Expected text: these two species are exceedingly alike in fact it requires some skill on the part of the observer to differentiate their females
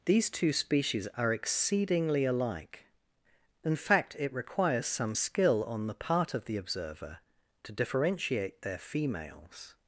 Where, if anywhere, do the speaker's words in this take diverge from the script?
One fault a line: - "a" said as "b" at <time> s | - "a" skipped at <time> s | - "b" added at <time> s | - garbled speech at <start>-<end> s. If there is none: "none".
none